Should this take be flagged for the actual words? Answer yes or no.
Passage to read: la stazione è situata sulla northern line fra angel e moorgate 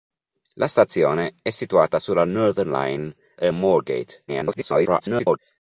yes